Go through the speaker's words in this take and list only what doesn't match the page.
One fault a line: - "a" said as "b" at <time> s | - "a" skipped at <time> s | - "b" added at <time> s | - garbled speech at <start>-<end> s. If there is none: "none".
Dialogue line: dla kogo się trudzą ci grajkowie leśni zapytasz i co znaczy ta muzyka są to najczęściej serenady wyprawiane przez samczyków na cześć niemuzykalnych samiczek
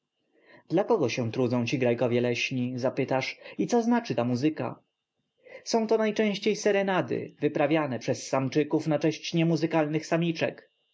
none